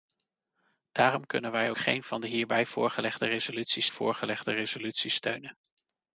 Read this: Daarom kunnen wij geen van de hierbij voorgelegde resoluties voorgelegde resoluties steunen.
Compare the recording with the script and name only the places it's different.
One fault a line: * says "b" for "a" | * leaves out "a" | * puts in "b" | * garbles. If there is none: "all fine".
all fine